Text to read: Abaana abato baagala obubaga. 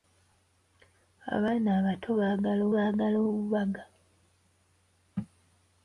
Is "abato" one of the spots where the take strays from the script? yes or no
no